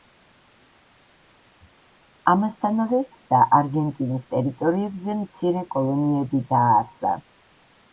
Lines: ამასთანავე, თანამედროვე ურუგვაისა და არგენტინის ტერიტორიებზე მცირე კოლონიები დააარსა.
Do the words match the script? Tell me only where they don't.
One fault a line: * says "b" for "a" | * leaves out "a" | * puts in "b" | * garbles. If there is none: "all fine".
* leaves out "თანამედროვე ურუგვაისა"